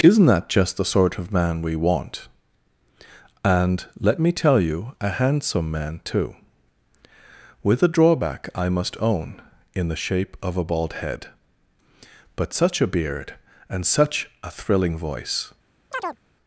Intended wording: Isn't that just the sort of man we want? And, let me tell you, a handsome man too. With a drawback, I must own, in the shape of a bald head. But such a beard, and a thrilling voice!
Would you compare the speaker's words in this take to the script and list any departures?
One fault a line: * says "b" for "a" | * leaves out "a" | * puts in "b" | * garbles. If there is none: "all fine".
* puts in "such"